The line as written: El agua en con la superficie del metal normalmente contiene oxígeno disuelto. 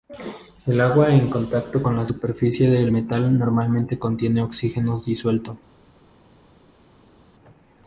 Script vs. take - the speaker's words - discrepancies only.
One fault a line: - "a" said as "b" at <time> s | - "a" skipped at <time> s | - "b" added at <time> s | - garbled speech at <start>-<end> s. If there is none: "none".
- "contacto" added at 1.3 s